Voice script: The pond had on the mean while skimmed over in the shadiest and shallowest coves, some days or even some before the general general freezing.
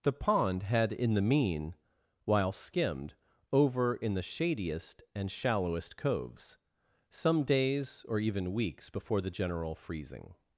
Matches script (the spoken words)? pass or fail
fail